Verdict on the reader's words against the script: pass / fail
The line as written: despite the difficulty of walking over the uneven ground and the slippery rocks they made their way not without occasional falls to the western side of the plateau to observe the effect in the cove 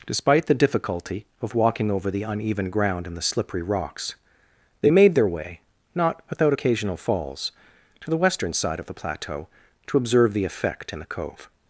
pass